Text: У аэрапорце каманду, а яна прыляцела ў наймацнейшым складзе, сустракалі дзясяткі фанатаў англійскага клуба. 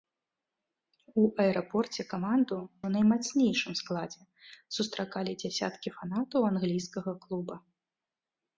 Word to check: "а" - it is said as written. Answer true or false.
false